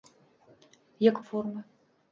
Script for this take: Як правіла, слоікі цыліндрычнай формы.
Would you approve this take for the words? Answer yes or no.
no